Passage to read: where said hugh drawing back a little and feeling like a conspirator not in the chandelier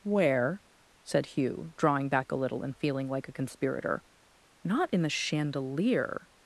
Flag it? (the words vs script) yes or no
no